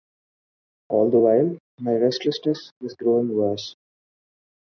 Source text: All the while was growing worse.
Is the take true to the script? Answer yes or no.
no